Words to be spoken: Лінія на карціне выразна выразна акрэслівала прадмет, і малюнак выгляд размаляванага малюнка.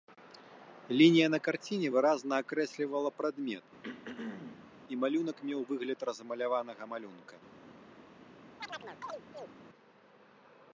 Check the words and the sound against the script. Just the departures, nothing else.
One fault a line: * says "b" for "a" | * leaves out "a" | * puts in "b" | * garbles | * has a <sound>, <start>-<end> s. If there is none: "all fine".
* leaves out "выразна"
* has a throat clearing, 3.8-4.7 s
* puts in "меў"
* has a chirp, 8.6-9.6 s